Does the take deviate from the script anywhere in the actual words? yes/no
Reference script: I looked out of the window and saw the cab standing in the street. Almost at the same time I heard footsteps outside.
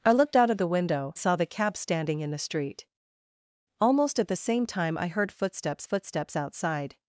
yes